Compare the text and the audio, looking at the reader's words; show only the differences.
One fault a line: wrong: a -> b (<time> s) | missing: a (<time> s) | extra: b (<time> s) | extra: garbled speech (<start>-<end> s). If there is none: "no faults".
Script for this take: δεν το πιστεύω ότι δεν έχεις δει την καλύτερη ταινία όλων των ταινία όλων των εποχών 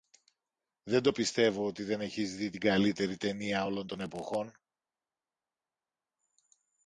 missing: ταινία όλων των (4.0 s)